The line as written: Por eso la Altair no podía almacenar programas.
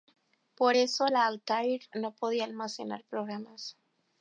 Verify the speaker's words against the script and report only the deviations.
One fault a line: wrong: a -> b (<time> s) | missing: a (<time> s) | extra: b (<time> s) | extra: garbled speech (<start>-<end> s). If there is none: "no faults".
no faults